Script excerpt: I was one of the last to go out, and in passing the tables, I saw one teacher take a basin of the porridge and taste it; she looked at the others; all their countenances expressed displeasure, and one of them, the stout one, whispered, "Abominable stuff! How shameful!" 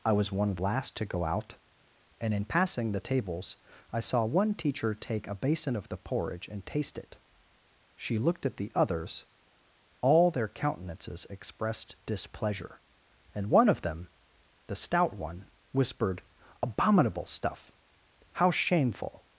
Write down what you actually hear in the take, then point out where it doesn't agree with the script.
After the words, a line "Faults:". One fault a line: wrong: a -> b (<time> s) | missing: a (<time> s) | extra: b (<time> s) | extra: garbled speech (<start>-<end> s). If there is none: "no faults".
I was one of last to go out, and in passing the tables, I saw one teacher take a basin of the porridge and taste it; she looked at the others; all their countenances expressed displeasure, and one of them, the stout one, whispered, "Abominable stuff! How shameful!"
Faults:
missing: the (0.6 s)